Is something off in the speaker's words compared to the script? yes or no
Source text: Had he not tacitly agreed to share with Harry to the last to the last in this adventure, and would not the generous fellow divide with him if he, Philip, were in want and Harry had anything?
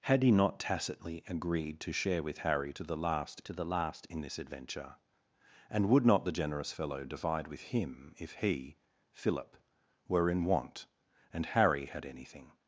no